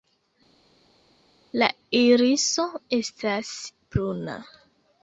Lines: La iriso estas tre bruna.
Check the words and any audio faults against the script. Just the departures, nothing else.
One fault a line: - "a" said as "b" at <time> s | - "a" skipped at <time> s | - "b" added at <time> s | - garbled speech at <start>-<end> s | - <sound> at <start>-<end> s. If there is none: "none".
- "tre" skipped at 3.5 s